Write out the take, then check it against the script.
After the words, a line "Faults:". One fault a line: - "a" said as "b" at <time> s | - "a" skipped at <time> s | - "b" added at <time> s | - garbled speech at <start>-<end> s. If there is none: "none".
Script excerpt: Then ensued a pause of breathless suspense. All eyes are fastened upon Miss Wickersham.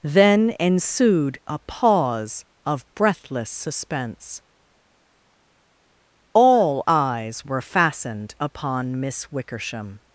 Then ensued a pause of breathless suspense. All eyes were fastened upon Miss Wickersham.
Faults:
- "are" said as "were" at 7.5 s